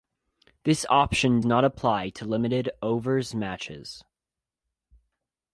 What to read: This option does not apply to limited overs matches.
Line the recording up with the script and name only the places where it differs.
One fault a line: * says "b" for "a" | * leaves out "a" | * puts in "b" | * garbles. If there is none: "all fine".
* leaves out "does"